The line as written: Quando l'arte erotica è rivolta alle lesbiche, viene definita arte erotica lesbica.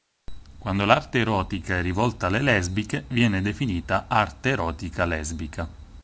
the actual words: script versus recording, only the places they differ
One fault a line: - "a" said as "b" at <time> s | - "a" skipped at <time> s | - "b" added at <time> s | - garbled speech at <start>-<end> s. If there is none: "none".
none